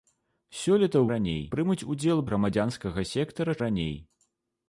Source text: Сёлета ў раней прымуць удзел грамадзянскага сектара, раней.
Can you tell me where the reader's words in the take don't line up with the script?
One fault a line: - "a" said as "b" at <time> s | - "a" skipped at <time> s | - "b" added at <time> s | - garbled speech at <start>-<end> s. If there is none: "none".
none